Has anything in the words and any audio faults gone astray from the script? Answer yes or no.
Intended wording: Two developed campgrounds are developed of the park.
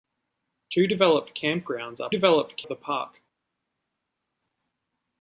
no